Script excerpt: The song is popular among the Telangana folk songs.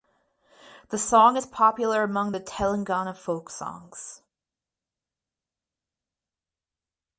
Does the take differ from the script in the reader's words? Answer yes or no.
no